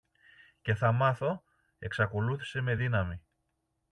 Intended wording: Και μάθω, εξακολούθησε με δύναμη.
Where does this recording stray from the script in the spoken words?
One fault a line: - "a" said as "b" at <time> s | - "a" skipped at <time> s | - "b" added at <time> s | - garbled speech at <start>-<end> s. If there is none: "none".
- "θα" added at 0.8 s